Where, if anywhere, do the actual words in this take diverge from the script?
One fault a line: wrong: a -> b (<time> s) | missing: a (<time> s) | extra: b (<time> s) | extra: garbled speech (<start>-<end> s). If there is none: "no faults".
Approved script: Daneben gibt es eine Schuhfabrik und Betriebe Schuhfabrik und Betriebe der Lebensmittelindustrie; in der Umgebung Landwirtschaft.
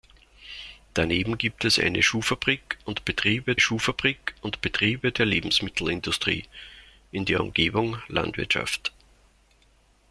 no faults